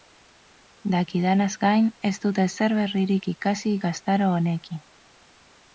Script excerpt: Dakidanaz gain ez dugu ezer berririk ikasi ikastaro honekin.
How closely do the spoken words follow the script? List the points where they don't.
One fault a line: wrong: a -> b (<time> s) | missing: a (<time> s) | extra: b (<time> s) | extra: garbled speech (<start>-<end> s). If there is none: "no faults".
wrong: dugu -> dut (2.2 s)